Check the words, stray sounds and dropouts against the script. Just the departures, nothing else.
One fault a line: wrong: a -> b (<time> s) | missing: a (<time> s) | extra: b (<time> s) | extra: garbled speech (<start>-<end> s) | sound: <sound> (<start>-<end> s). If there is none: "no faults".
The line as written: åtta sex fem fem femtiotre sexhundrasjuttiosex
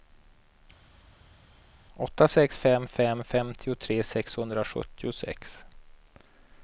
no faults